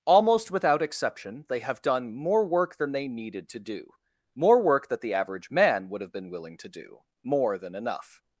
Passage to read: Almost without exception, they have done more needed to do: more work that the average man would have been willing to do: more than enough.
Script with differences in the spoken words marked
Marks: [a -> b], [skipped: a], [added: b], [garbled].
Almost without exception, they have done more [added: work than they] needed to do: more work that the average man would have been willing to do: more than enough.